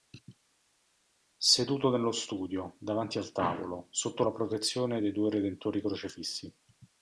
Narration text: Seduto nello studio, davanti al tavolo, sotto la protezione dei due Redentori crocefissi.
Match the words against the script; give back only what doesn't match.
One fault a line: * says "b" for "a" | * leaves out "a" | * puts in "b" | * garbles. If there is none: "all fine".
all fine